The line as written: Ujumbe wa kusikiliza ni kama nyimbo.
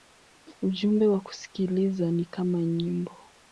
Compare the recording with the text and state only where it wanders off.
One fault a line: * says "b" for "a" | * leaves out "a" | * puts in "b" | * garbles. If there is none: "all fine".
all fine